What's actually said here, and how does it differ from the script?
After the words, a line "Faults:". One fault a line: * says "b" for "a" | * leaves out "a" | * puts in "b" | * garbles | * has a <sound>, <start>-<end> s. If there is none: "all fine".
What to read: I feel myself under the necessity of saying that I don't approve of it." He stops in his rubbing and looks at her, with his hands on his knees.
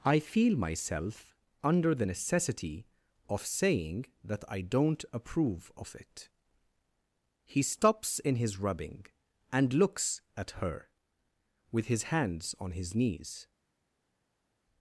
I feel myself under the necessity of saying that I don't approve of it." He stops in his rubbing and looks at her, with his hands on his knees.
Faults:
all fine